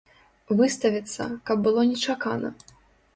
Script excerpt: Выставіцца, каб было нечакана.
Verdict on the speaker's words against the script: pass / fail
pass